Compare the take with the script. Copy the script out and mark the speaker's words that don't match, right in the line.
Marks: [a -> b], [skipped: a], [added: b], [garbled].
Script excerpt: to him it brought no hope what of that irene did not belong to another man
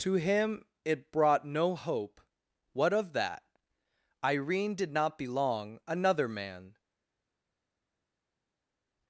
to him it brought no hope what of that irene did not belong [skipped: to] another man